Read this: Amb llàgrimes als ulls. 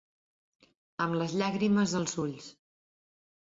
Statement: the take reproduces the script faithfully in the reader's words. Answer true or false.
false